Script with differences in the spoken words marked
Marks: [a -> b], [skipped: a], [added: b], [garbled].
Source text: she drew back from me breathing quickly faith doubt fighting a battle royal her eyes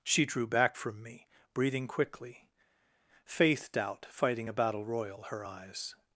she drew back from me breathing quickly faith doubt fighting a battle royal her eyes